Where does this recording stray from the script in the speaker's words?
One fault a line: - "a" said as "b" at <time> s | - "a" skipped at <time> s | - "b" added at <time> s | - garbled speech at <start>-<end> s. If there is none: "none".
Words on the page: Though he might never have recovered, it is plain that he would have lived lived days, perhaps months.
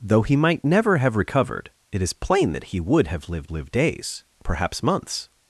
none